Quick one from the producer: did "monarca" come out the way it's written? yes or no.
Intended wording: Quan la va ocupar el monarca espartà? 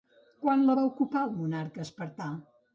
yes